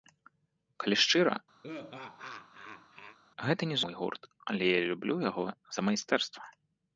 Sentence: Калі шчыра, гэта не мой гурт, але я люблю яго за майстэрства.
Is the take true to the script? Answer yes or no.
yes